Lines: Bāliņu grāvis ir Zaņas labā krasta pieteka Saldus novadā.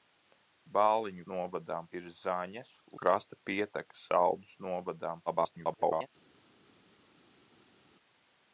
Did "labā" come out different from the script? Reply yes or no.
yes